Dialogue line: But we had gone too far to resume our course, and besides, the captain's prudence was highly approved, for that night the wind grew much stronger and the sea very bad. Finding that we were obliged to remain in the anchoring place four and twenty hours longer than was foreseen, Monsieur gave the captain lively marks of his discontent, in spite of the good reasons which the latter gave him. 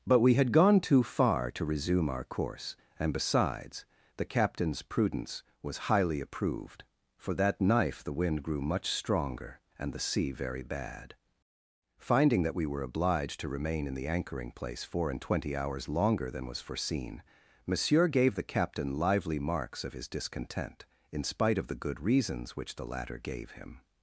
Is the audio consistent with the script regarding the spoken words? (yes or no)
no